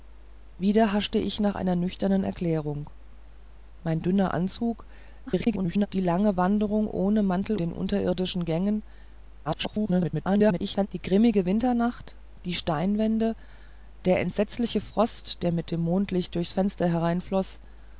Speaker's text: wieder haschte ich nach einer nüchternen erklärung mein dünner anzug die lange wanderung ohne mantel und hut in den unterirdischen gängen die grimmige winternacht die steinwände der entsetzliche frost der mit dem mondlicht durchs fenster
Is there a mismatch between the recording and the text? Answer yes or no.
yes